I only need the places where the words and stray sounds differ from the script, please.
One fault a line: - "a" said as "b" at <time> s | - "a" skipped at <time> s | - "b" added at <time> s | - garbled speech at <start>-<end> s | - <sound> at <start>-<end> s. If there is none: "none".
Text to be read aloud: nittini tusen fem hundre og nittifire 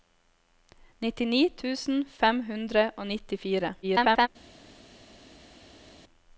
- garbled speech at 3.8-4.3 s